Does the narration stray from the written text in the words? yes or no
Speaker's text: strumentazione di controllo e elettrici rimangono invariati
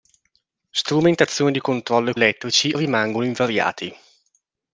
no